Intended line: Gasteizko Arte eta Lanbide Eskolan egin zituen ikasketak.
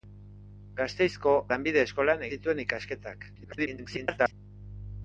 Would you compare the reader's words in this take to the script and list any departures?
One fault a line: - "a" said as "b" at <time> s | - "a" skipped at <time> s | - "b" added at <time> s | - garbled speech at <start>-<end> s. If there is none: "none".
- "Arte eta" skipped at 1.3 s
- "egin" skipped at 2.3 s
- garbled speech at 3.4-4.3 s